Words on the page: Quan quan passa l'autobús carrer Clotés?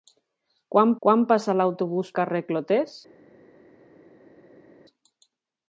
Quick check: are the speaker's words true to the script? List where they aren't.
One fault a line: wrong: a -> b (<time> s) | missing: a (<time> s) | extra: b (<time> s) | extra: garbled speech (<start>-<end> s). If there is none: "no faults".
no faults